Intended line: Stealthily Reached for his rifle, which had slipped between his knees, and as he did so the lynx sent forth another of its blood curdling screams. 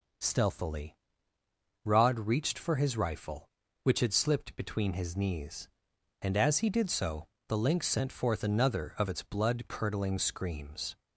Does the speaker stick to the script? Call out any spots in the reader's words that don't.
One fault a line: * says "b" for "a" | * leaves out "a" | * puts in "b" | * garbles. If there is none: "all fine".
* puts in "Rod"